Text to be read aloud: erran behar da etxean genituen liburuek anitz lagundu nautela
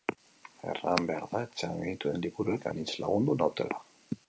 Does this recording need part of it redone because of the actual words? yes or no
no